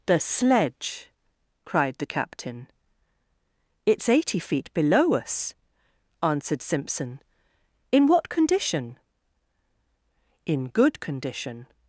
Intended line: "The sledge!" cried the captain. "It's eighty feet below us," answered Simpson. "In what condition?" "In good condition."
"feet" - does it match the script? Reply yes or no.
yes